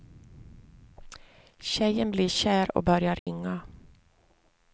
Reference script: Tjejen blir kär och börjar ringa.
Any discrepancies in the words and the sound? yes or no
yes